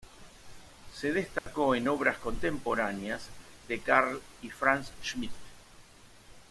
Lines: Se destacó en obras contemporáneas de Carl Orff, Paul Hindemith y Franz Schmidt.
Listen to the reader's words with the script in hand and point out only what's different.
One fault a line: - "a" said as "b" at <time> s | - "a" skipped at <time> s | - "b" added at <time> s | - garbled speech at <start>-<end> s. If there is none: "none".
- "Orff Paul Hindemith" skipped at 4.2 s